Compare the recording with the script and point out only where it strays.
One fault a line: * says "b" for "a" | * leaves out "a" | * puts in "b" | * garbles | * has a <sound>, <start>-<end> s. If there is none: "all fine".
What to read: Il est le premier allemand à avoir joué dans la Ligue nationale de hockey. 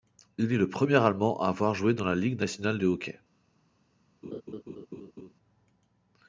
* has a laugh, 4.2-5.3 s